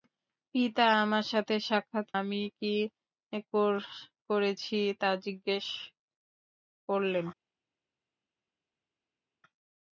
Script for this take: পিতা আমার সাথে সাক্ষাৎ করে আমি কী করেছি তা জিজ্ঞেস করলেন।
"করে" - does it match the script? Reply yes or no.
no